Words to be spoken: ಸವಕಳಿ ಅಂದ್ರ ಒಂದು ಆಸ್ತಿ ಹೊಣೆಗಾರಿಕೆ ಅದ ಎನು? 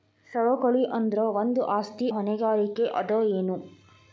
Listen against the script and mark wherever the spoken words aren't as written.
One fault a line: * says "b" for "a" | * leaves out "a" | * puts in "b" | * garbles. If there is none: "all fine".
all fine